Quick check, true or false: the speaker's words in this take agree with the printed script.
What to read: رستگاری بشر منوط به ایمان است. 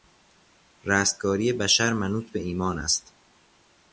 true